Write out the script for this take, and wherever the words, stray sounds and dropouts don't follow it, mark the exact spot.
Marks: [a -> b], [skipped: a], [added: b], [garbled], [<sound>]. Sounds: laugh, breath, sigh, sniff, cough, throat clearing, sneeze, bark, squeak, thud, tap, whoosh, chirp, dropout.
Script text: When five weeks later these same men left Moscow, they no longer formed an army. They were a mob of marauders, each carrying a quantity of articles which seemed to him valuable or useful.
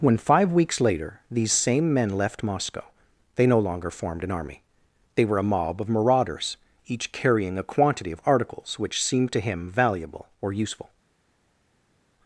When five weeks later these same men left Moscow, they no longer formed an army. They were a mob of marauders, each carrying a quantity of articles which seemed to him valuable or useful.